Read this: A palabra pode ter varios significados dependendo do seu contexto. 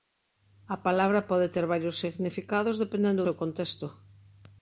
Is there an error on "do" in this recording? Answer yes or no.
yes